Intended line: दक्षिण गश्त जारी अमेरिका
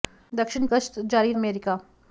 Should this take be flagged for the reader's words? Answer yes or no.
no